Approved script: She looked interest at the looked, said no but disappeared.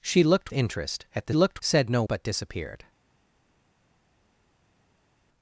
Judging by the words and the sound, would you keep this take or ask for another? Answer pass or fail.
pass